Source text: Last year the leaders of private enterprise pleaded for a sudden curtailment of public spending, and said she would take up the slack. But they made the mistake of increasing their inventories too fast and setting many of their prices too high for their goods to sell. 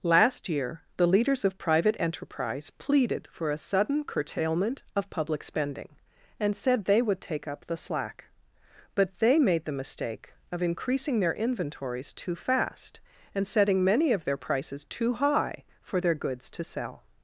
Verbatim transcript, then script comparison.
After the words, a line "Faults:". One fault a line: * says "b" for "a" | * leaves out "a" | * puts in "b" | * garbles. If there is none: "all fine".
Last year the leaders of private enterprise pleaded for a sudden curtailment of public spending, and said they would take up the slack. But they made the mistake of increasing their inventories too fast and setting many of their prices too high for their goods to sell.
Faults:
* says "they" for "she"